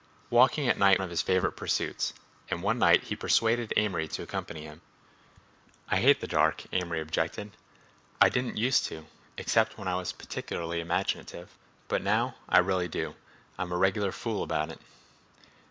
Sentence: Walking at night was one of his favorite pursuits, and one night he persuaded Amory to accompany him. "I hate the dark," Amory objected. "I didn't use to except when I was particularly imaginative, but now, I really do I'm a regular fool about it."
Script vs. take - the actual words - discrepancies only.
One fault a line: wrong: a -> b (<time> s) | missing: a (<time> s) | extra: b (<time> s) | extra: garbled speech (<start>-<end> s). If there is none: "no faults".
missing: was one (1.0 s)